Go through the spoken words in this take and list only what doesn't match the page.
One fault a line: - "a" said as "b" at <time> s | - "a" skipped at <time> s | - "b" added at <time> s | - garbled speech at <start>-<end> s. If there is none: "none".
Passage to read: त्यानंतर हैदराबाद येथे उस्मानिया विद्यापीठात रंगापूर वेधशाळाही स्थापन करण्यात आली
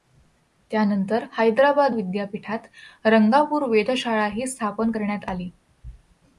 - "येथे उस्मानिया" skipped at 1.9 s